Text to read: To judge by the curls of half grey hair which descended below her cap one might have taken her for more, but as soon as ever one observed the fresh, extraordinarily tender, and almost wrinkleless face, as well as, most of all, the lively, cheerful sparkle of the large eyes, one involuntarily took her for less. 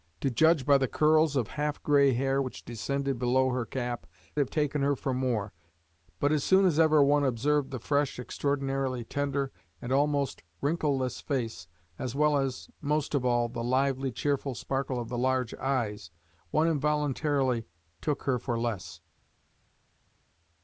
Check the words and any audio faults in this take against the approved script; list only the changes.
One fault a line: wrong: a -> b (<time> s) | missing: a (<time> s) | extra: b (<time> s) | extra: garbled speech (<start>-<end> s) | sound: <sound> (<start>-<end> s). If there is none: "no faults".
missing: one might (4.1 s)